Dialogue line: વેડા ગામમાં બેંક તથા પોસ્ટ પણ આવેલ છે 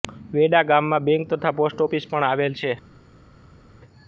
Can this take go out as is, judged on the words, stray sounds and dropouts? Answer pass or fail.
fail